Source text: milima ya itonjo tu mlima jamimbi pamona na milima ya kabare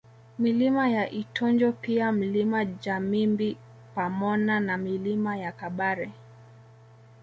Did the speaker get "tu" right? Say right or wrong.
wrong